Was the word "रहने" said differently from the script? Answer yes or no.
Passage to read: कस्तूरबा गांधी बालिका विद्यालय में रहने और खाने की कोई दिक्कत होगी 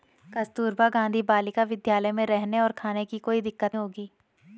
no